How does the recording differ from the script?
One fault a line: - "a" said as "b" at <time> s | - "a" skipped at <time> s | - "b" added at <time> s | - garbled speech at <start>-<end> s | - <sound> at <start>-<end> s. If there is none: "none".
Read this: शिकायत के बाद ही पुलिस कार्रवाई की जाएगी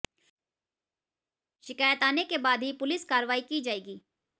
- "आने" added at 2.0 s